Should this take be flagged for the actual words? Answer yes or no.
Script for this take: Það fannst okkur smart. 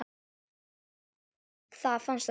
yes